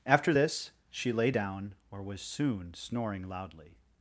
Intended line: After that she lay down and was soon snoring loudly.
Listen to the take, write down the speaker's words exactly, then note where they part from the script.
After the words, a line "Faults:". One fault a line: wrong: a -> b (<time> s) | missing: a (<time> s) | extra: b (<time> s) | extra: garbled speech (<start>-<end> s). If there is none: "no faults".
After this she lay down or was soon snoring loudly.
Faults:
wrong: that -> this (0.3 s)
wrong: and -> or (1.9 s)